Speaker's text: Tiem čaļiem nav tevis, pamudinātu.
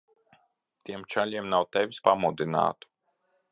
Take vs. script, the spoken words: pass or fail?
pass